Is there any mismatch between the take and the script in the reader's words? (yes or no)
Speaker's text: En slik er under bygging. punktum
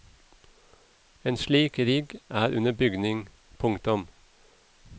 yes